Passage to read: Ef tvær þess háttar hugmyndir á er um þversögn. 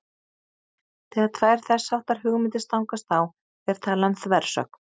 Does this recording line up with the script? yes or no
no